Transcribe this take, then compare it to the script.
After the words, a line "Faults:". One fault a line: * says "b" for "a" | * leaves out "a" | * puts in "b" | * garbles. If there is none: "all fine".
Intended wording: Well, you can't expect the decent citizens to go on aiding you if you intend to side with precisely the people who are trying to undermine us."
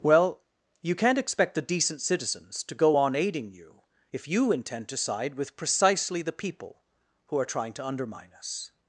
Well, you can't expect the decent citizens to go on aiding you if you intend to side with precisely the people who are trying to undermine us."
Faults:
all fine